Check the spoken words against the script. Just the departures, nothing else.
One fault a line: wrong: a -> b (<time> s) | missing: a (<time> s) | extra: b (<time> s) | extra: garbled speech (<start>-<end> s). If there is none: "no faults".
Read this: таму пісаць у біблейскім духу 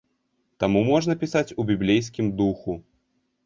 extra: можна (0.9 s)